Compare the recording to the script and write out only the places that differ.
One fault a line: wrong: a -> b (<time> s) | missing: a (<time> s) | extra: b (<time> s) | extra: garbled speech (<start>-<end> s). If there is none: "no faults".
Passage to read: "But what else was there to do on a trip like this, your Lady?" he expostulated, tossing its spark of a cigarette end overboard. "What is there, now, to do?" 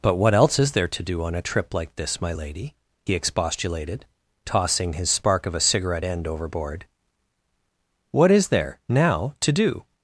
wrong: was -> is (0.6 s)
wrong: your -> my (2.2 s)
wrong: its -> his (4.9 s)